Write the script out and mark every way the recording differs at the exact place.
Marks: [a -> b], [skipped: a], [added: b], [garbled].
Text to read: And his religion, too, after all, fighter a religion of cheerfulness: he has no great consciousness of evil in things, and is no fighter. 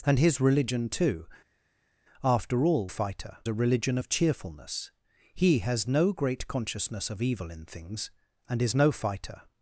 And his religion, too, after all, fighter a religion of cheerfulness: he has no great consciousness of evil in things, and is no fighter.